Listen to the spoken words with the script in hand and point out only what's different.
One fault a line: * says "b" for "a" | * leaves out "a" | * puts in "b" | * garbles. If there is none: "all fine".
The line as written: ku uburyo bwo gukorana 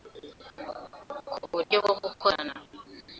all fine